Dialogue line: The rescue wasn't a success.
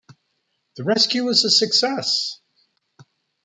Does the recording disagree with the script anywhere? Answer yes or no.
yes